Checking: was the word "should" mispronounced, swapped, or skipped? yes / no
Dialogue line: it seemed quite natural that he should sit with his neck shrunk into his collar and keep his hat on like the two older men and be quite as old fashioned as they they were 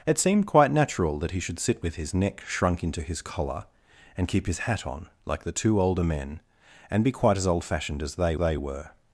no